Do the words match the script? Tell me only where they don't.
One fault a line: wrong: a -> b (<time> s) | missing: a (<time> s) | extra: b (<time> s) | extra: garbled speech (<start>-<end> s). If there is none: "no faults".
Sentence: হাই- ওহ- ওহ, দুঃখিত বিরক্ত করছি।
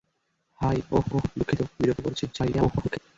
extra: garbled speech (2.3-3.0 s)